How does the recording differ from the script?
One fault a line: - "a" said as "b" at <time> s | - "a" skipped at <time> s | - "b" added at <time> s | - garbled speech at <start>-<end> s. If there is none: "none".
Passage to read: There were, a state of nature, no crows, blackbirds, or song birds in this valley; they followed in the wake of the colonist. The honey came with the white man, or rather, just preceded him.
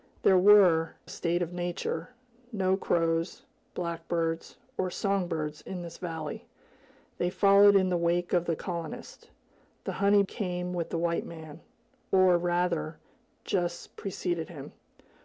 none